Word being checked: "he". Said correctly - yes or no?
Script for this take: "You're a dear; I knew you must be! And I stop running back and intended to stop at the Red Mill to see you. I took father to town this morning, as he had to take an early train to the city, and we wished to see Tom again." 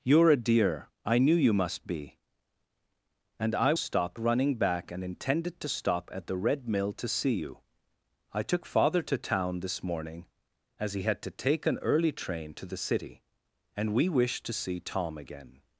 yes